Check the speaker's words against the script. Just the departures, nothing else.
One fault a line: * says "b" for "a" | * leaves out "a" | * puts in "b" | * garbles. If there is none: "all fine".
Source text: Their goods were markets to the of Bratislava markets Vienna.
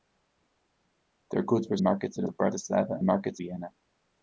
all fine